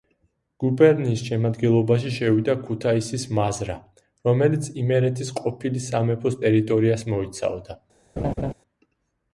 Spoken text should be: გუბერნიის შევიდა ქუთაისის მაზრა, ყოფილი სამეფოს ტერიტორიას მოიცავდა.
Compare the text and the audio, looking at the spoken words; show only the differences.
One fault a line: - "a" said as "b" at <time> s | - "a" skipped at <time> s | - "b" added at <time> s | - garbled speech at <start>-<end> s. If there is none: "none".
- "შემადგენლობაში" added at 1.3 s
- "რომელიც იმერეთის" added at 4.3 s